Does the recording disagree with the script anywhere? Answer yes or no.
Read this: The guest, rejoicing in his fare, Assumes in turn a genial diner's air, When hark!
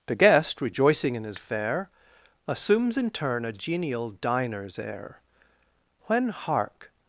no